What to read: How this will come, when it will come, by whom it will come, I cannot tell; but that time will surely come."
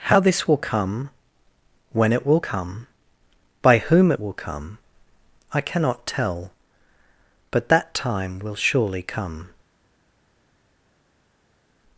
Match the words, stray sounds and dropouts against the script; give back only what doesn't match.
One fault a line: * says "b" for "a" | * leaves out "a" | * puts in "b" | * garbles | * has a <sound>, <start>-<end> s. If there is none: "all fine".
all fine